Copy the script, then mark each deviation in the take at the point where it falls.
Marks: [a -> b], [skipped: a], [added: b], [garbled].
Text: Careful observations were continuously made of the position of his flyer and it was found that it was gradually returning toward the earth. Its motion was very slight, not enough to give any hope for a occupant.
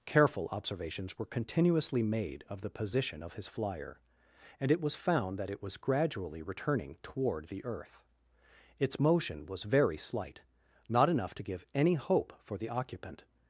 Careful observations were continuously made of the position of his flyer and it was found that it was gradually returning toward the earth. Its motion was very slight, not enough to give any hope for [a -> the] occupant.